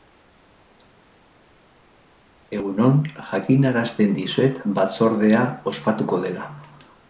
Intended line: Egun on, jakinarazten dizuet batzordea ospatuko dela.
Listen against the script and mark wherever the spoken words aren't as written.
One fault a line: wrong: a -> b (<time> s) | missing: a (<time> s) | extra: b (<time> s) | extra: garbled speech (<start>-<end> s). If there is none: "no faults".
no faults